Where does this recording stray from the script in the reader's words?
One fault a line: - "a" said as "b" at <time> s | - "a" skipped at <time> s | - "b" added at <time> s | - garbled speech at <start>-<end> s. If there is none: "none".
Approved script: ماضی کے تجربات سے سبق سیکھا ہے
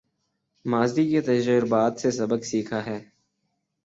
none